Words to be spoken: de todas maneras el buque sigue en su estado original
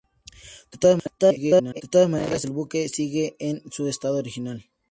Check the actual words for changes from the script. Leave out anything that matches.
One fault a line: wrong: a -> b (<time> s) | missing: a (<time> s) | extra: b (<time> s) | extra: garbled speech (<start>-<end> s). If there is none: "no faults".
extra: garbled speech (1.2-1.8 s)